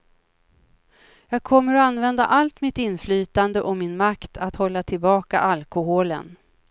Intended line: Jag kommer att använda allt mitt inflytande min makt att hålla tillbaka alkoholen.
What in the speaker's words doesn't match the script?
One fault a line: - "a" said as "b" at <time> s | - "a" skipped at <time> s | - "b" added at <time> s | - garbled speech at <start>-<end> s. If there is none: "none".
- "och" added at 3.6 s